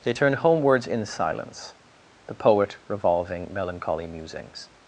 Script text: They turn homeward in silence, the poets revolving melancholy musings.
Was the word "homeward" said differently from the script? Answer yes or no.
yes